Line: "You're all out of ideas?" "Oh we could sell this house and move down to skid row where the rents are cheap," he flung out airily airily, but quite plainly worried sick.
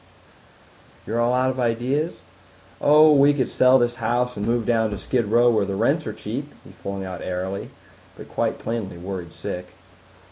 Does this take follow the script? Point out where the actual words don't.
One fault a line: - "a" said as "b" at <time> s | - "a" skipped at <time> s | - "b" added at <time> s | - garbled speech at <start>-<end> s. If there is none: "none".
- "airily" skipped at 7.7 s